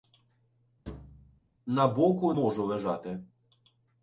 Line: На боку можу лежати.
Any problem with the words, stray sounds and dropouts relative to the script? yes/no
yes